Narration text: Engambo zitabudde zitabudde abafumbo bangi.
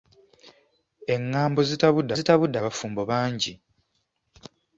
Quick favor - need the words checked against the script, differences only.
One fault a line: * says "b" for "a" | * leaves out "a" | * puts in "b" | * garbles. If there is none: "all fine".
all fine